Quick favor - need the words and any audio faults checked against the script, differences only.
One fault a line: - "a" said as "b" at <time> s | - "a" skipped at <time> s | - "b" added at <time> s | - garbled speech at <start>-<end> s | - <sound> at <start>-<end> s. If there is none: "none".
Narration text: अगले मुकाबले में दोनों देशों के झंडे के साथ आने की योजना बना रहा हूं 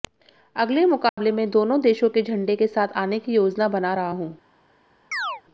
- dropout at 1.1-1.2 s
- chirp at 5.1-5.4 s